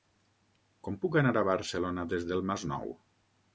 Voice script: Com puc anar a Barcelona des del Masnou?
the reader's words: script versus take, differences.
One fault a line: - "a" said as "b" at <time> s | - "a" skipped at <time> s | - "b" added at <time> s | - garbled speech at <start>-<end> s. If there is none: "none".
none